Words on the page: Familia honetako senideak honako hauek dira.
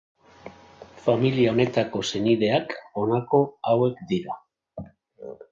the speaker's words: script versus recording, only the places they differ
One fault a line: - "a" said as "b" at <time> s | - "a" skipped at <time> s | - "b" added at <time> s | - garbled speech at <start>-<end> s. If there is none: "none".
none